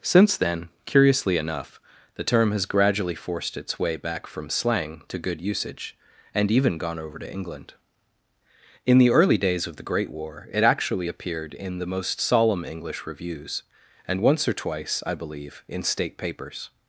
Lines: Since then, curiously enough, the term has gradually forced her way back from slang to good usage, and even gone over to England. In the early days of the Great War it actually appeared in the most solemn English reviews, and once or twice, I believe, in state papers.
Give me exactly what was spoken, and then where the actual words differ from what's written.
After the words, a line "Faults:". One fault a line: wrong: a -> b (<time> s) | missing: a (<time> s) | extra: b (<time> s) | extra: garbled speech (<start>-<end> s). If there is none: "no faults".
Since then, curiously enough, the term has gradually forced its way back from slang to good usage, and even gone over to England. In the early days of the Great War it actually appeared in the most solemn English reviews, and once or twice, I believe, in state papers.
Faults:
wrong: her -> its (3.5 s)